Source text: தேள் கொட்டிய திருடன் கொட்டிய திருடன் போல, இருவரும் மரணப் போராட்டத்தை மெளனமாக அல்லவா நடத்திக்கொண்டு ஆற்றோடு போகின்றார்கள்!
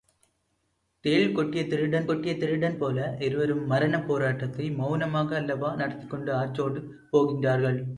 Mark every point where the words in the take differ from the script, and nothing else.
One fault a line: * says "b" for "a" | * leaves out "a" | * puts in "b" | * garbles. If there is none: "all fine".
all fine